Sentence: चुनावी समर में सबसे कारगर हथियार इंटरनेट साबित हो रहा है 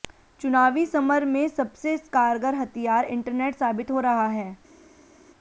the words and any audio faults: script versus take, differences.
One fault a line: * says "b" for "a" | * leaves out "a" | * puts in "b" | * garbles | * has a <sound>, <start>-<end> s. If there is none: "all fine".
all fine